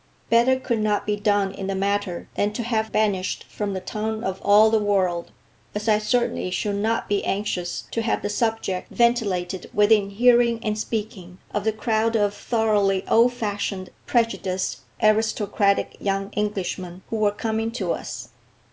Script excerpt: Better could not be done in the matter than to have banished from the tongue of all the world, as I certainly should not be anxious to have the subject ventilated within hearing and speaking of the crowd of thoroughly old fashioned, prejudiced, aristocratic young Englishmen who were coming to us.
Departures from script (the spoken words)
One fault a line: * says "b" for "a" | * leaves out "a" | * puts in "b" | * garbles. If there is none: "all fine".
all fine